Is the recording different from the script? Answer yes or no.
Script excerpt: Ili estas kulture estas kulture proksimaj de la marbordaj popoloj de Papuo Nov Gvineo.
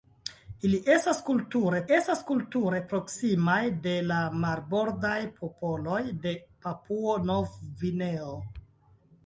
no